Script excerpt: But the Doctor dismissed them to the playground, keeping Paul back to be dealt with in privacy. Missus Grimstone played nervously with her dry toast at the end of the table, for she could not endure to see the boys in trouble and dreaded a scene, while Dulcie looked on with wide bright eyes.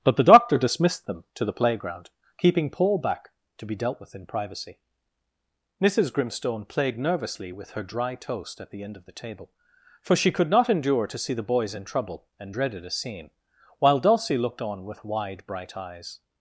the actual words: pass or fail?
pass